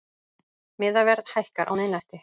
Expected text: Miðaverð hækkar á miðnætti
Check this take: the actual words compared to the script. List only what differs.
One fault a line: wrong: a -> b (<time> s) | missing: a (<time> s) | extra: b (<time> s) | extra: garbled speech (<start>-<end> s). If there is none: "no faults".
no faults